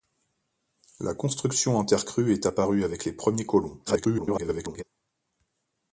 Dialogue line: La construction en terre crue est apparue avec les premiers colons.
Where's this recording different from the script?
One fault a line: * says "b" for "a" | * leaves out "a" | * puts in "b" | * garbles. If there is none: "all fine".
* garbles